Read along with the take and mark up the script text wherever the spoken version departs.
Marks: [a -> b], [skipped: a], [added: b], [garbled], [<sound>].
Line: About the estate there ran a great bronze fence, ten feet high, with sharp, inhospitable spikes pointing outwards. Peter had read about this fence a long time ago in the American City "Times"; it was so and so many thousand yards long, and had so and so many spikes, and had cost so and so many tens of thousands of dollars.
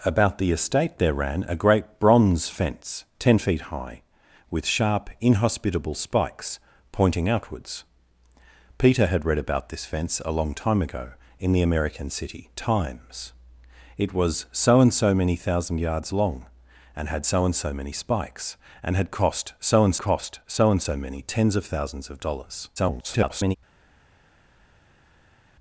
About the estate there ran a great bronze fence, ten feet high, with sharp, inhospitable spikes pointing outwards. Peter had read about this fence a long time ago in the American City "Times"; it was so and so many thousand yards long, and had so and so many spikes, and had cost so and [added: cost so and] so many tens of thousands of dollars. [garbled]